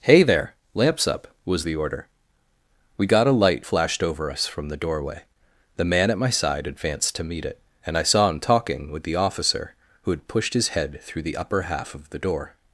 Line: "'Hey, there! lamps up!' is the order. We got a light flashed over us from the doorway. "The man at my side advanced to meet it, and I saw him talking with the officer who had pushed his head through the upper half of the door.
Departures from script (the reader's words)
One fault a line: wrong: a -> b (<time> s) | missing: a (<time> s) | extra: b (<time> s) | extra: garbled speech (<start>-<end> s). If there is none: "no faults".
wrong: is -> was (1.4 s)